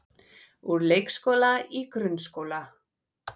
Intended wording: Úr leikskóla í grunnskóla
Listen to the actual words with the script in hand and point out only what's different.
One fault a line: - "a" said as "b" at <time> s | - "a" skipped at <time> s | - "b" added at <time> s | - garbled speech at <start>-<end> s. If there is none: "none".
none